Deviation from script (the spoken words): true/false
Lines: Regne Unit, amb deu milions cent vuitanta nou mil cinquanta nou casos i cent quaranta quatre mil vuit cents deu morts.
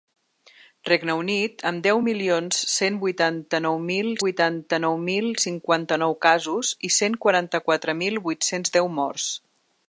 true